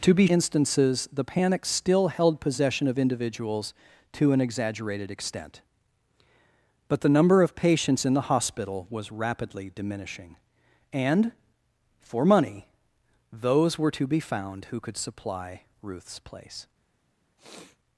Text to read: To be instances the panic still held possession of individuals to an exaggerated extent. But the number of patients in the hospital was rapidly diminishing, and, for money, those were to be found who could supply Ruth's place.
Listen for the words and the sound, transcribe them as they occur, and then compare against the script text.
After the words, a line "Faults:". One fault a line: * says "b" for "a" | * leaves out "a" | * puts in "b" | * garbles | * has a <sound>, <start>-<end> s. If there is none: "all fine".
To be instances the panic still held possession of individuals to an exaggerated extent. But the number of patients in the hospital was rapidly diminishing, and, for money, those were to be found who could supply Ruth's place.
Faults:
* has a sniff, 17.4-17.8 s